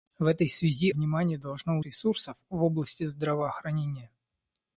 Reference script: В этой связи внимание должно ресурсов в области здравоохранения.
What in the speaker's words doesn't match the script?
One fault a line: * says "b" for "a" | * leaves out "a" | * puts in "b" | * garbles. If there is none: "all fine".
all fine